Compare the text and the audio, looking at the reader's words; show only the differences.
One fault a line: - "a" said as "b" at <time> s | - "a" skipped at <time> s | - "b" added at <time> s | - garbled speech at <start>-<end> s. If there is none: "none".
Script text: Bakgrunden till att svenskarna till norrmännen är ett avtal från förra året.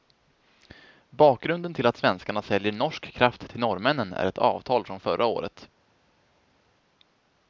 - "säljer norsk kraft" added at 2.4 s